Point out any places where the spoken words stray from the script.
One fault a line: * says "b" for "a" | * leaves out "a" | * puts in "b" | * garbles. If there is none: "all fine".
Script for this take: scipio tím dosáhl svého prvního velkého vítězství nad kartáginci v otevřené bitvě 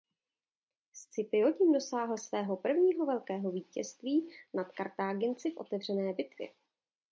all fine